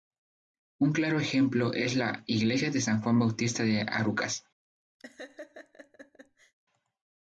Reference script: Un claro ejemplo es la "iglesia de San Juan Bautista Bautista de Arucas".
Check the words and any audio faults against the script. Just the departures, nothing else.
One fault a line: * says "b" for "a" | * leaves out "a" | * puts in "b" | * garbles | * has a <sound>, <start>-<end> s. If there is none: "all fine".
* leaves out "Bautista"
* has a laugh, 5.0-6.5 s